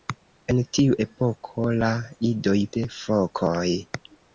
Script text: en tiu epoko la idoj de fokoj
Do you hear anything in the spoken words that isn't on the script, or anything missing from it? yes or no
no